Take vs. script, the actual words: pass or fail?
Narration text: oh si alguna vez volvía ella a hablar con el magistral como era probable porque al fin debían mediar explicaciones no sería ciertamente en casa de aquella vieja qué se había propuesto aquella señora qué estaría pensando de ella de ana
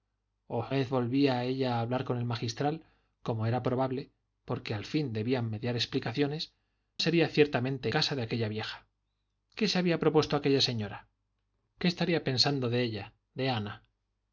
fail